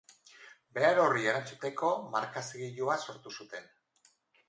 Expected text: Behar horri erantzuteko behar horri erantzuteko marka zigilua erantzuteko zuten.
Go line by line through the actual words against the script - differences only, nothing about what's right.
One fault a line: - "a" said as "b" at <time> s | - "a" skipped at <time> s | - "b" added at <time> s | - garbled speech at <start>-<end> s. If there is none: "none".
- "behar horri erantzuteko" skipped at 1.9 s
- "erantzuteko" said as "sortu" at 3.1 s